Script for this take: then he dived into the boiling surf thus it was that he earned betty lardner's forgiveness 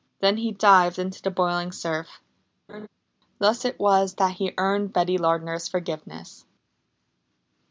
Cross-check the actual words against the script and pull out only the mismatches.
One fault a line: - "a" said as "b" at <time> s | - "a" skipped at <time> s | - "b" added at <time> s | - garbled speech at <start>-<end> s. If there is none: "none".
none